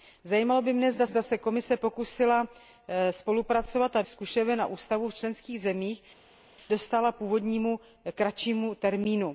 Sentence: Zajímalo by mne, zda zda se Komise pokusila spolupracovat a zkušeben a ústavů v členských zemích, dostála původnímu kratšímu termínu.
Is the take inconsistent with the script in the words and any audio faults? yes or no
no